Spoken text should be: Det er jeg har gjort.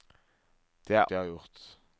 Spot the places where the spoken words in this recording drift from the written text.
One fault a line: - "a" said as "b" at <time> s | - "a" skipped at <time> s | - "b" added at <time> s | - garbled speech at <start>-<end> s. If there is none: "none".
none